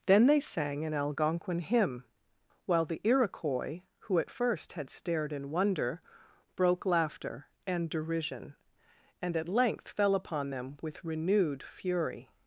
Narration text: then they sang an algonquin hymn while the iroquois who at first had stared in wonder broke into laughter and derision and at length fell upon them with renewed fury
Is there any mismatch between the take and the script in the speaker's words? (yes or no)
yes